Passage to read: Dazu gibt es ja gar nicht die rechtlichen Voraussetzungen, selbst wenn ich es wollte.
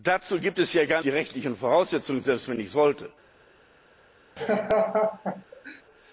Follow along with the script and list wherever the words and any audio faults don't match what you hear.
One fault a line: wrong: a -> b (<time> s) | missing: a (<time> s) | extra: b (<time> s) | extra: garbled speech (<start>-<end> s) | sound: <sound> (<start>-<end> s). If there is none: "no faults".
missing: nicht (1.0 s)
sound: laugh (4.4-5.8 s)